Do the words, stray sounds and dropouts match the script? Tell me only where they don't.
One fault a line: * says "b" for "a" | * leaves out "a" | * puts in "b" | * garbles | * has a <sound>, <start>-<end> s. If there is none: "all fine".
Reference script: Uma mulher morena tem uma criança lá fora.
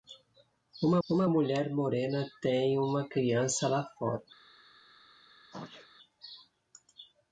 * puts in "uma"
* has a sneeze, 5.5-5.9 s